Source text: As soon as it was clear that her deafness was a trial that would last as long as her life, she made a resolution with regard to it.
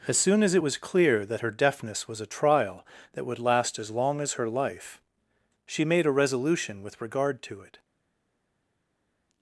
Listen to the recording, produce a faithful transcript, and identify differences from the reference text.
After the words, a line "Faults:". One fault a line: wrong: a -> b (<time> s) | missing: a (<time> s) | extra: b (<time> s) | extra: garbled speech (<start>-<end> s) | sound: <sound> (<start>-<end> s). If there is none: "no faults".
As soon as it was clear that her deafness was a trial that would last as long as her life, she made a resolution with regard to it.
Faults:
no faults